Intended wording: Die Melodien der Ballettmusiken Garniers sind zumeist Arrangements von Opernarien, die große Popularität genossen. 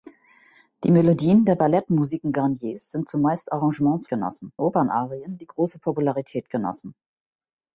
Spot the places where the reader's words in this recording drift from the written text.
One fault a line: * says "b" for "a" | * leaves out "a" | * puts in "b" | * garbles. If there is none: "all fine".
* says "genossen" for "von"